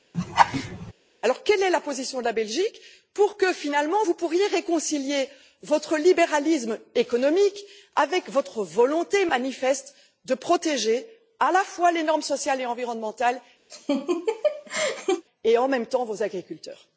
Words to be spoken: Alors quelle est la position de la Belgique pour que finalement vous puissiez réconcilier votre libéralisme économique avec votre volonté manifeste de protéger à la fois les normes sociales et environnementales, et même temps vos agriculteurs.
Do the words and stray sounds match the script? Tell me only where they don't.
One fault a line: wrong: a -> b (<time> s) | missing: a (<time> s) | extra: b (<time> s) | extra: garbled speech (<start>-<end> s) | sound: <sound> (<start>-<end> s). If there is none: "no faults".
sound: laugh (0.1-0.9 s)
sound: laugh (13.7-15.2 s)
extra: en (15.6 s)